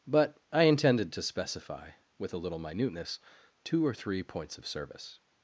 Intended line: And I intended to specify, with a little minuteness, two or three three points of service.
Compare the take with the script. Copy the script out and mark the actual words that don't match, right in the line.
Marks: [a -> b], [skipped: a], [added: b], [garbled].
[And -> But] I intended to specify, with a little minuteness, two or three [skipped: three] points of service.